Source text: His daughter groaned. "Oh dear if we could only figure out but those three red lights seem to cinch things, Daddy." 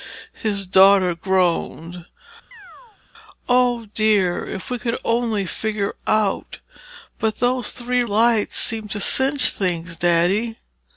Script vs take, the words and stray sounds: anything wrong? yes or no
yes